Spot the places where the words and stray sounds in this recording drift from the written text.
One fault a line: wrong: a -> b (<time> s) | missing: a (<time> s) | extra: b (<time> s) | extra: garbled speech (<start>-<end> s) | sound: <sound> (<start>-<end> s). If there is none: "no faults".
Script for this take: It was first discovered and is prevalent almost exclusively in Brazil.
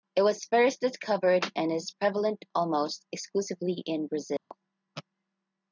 sound: dropout (4.4-4.5 s)